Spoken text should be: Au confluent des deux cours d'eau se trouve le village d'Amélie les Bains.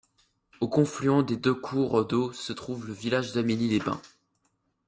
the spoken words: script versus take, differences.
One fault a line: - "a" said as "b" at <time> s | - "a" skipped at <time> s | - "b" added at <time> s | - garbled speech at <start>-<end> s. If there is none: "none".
none